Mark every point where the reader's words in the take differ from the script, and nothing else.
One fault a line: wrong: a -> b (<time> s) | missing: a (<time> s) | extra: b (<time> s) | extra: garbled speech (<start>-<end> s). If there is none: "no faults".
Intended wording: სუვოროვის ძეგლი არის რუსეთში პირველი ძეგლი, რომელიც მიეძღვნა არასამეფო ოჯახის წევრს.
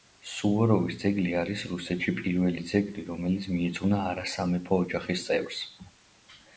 no faults